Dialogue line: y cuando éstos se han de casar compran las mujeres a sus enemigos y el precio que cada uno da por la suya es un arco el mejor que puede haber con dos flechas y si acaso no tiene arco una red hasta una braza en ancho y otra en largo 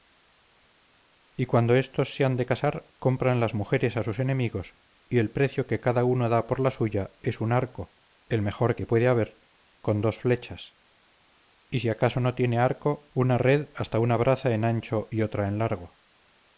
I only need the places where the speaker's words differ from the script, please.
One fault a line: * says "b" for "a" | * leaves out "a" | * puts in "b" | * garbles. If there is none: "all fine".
all fine